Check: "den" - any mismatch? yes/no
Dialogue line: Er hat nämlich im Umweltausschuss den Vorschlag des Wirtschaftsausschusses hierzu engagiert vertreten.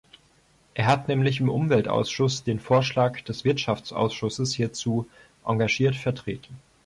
no